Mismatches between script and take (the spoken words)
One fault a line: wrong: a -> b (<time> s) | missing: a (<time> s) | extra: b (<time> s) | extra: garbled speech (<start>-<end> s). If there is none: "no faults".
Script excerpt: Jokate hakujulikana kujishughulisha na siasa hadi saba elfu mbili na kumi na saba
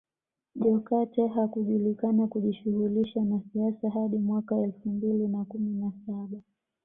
wrong: saba -> mwaka (4.2 s)